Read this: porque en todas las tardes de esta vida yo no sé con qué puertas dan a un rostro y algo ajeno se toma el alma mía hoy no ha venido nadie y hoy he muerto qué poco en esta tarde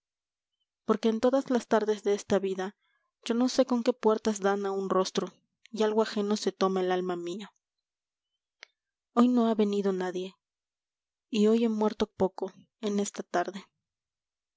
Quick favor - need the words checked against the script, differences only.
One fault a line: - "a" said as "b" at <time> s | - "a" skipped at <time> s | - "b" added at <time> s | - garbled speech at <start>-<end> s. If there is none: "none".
- "qué" skipped at 12.1 s